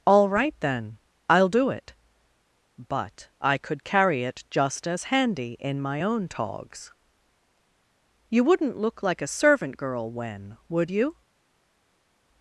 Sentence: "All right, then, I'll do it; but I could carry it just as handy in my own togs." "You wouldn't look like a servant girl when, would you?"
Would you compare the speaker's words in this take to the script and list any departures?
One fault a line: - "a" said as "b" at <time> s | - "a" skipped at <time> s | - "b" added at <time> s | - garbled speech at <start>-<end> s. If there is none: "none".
none